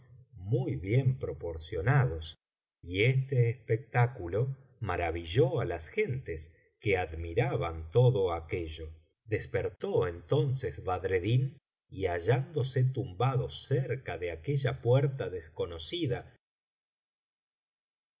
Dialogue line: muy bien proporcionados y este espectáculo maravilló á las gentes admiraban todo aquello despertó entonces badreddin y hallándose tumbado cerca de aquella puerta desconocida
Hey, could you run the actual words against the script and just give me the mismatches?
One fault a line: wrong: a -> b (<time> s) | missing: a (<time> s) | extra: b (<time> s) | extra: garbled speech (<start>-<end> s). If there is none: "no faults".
extra: que (6.8 s)